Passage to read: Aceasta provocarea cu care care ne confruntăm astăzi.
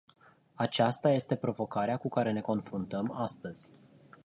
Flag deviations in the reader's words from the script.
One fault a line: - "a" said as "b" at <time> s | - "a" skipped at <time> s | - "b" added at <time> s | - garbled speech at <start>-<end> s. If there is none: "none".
- "este" added at 1.1 s
- "care" skipped at 2.3 s